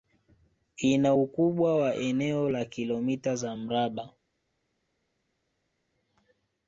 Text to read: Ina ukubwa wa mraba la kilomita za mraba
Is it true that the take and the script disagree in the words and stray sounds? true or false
true